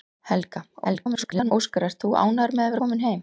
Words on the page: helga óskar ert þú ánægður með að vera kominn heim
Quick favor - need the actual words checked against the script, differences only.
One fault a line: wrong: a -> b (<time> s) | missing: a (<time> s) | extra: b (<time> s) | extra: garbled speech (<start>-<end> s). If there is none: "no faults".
extra: garbled speech (0.8-1.5 s)
missing: vera (2.8 s)